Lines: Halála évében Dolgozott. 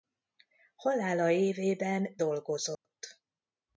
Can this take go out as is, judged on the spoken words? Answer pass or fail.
pass